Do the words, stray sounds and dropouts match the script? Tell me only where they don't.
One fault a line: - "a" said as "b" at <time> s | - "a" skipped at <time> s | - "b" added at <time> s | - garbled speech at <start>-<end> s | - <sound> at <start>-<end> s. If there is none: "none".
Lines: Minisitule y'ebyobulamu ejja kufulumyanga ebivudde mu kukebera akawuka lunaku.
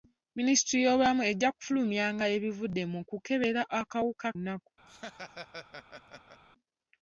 - laugh at 4.9-6.4 s